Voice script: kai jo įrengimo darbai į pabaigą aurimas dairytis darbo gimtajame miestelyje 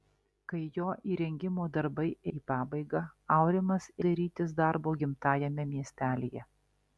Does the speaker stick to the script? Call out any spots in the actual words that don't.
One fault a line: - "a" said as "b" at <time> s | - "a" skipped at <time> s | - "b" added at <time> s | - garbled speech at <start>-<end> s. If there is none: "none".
none